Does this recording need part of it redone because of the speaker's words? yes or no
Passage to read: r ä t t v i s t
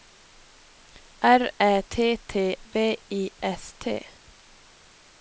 no